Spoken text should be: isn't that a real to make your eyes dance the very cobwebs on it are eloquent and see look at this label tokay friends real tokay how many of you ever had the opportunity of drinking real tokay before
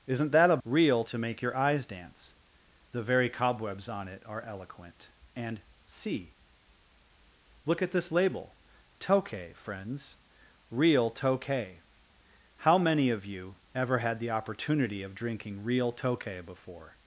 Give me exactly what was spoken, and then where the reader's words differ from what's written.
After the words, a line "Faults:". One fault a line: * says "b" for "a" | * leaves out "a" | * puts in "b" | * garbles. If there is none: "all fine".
isn't that a real to make your eyes dance the very cobwebs on it are eloquent and see look at this label tokay friends real tokay how many of you ever had the opportunity of drinking real tokay before
Faults:
all fine